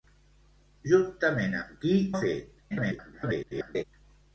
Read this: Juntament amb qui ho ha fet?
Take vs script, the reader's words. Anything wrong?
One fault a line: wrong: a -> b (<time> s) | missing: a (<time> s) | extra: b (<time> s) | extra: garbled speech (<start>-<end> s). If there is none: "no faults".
missing: ho (1.9 s)
extra: garbled speech (2.7-3.8 s)